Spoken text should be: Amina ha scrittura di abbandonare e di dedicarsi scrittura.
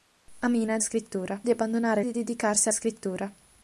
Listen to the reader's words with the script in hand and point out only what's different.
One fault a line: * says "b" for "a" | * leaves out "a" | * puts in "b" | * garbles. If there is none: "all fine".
all fine